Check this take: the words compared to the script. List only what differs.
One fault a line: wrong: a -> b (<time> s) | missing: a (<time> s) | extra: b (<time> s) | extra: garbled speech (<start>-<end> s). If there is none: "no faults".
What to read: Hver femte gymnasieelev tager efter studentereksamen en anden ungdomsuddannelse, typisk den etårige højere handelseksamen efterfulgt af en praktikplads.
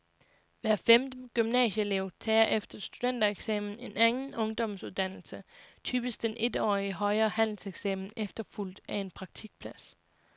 no faults